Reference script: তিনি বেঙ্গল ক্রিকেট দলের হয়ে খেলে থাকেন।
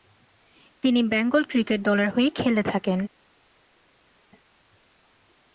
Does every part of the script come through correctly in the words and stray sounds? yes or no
yes